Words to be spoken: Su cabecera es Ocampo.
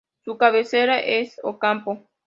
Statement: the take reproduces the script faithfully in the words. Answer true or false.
true